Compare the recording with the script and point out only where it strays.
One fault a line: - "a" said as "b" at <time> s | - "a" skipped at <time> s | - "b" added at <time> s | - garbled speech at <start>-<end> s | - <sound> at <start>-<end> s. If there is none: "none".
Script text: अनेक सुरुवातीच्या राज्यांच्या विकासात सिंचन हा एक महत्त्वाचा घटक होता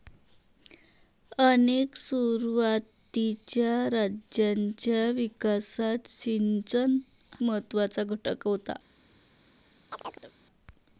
- "हा एक" skipped at 7.0 s
- chirp at 9.9-10.3 s